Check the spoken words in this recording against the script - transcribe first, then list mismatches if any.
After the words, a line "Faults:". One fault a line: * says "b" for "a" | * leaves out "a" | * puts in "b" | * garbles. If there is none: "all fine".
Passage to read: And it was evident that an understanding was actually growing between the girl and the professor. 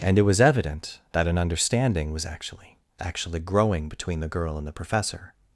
And it was evident that an understanding was actually actually growing between the girl and the professor.
Faults:
* puts in "actually"